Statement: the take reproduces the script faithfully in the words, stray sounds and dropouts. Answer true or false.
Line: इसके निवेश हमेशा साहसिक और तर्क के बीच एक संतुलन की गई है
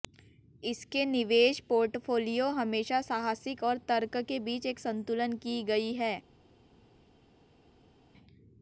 false